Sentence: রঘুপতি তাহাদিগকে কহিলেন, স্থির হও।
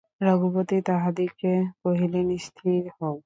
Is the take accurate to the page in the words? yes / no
yes